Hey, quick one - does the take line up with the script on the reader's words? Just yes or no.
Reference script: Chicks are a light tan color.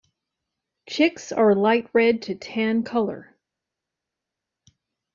no